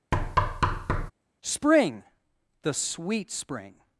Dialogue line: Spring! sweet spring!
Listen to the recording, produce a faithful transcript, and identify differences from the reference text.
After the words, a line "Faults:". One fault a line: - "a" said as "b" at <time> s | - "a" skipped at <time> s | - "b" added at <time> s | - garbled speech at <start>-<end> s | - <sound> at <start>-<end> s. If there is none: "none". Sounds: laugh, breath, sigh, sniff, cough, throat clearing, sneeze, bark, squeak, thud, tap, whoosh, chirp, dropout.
Spring! the sweet spring!
Faults:
- thud at 0.1-1.1 s
- "the" added at 2.6 s